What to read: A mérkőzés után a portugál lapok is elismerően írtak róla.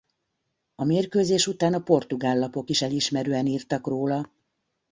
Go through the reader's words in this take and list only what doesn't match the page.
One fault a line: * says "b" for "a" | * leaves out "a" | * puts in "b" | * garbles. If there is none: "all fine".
all fine